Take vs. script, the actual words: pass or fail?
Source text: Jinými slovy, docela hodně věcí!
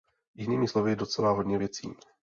pass